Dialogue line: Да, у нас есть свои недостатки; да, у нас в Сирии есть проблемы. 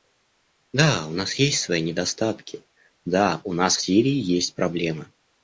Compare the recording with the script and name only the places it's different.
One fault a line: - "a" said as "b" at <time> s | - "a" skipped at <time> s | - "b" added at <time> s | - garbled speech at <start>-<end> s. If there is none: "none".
none